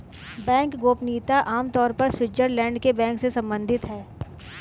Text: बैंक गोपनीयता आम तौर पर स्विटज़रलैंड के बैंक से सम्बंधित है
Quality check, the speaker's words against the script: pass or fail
pass